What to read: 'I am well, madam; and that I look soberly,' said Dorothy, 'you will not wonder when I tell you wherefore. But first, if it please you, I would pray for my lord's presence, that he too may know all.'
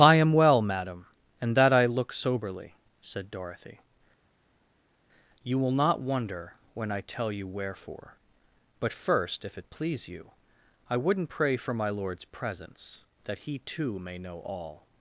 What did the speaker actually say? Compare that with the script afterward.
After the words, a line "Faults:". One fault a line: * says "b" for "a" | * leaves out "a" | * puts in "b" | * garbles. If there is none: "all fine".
'I am well, madam; and that I look soberly,' said Dorothy, 'you will not wonder when I tell you wherefore. But first, if it please you, I wouldn't pray for my lord's presence, that he too may know all.'
Faults:
* says "wouldn't" for "would"